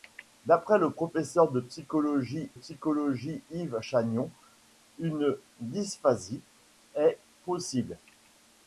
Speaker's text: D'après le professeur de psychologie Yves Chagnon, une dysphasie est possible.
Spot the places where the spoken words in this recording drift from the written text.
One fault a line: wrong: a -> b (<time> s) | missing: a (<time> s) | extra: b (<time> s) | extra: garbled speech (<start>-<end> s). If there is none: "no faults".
extra: psychologie (2.5 s)